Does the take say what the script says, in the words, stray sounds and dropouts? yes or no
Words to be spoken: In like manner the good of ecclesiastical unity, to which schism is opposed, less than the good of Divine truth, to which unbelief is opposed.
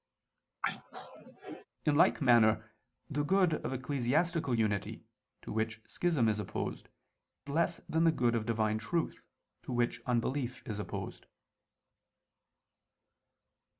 no